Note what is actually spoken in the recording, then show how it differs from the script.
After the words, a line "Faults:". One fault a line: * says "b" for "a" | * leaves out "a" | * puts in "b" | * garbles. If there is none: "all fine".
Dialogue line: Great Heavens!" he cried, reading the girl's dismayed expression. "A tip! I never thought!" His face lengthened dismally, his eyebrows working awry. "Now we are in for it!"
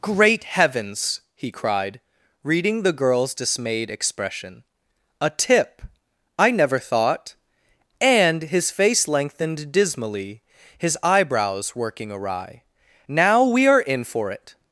Great Heavens!" he cried, reading the girl's dismayed expression. "A tip! I never thought!" and His face lengthened dismally, his eyebrows working awry. "Now we are in for it!"
Faults:
* puts in "and"